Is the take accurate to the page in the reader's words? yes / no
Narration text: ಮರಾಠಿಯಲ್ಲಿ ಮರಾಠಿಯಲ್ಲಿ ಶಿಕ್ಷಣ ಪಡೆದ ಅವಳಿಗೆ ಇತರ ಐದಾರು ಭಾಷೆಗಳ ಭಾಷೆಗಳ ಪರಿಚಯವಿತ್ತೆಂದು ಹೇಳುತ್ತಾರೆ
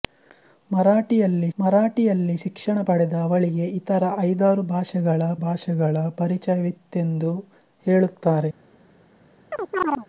yes